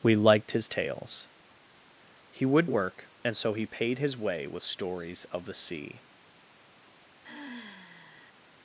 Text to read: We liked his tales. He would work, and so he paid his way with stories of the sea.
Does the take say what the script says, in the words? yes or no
yes